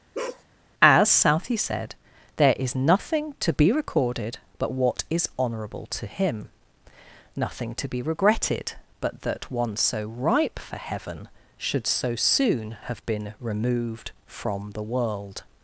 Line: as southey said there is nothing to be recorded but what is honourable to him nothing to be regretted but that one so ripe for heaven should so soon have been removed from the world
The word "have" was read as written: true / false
true